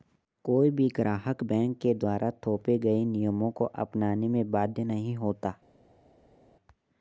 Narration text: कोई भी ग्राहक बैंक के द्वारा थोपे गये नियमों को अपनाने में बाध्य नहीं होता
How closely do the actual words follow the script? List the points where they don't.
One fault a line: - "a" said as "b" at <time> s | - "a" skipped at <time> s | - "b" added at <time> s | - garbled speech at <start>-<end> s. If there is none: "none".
none